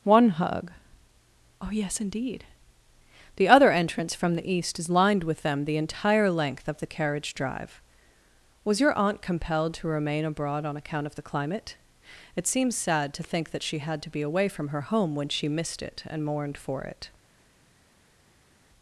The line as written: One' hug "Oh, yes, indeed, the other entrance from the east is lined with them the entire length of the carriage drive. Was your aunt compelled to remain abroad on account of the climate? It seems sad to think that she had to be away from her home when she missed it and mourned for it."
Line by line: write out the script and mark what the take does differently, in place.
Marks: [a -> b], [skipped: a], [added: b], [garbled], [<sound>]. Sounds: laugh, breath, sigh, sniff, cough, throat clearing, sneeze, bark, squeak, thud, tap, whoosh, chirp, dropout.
One' hug "Oh, yes, indeed, the other entrance from the east is lined with them the entire length of the carriage drive. Was your aunt compelled to remain abroad on account of the climate? It seems sad to think that she had to be away from her home when she missed it and mourned for it."